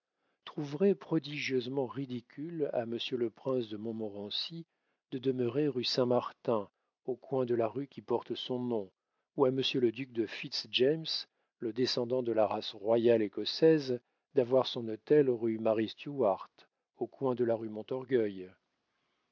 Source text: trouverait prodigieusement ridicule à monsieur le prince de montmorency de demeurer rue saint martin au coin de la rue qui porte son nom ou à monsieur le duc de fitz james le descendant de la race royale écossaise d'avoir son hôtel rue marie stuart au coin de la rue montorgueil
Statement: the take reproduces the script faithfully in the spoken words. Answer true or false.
true